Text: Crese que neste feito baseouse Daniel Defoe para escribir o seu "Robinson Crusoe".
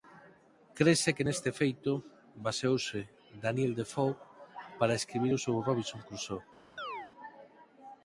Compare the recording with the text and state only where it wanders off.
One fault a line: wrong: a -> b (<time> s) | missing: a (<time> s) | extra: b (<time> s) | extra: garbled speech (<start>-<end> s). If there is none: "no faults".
no faults